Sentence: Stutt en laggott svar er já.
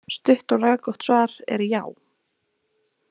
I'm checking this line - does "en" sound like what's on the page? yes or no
no